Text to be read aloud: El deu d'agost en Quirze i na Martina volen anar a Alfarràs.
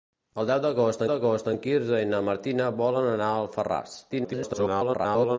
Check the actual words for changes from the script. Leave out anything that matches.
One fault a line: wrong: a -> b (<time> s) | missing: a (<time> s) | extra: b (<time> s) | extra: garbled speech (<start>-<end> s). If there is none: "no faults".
extra: d'agost (1.1 s)
extra: garbled speech (4.1-5.4 s)